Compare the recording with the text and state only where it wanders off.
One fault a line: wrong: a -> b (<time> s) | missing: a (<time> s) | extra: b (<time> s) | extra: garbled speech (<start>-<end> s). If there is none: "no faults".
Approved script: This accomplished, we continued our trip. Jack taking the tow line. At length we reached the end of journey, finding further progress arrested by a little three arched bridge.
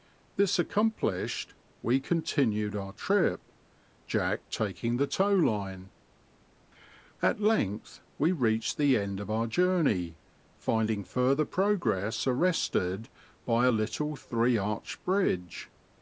extra: our (9.3 s)